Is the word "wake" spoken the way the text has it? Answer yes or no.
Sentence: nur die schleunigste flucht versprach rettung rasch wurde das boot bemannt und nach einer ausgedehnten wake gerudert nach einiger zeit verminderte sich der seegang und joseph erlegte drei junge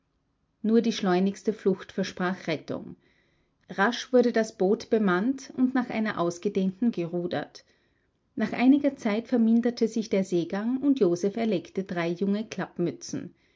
no